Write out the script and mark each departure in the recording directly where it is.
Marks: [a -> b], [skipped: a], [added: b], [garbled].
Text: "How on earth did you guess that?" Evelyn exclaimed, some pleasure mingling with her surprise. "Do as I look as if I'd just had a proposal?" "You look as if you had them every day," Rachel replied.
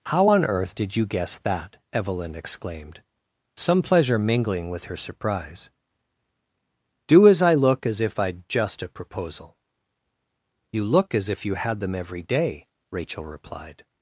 "How on earth did you guess that?" Evelyn exclaimed, some pleasure mingling with her surprise. "Do as I look as if I'd just [skipped: had] a proposal?" "You look as if you had them every day," Rachel replied.